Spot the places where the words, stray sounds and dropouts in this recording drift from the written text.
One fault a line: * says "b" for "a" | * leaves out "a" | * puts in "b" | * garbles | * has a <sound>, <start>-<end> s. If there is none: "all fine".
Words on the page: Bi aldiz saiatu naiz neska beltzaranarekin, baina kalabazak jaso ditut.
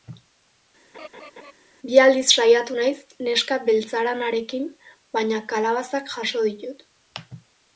* has a laugh, 0.9-1.5 s